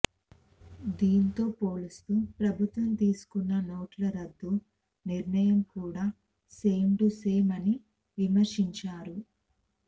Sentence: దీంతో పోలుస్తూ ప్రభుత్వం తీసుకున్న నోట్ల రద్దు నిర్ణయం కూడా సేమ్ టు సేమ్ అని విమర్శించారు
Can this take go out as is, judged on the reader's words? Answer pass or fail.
pass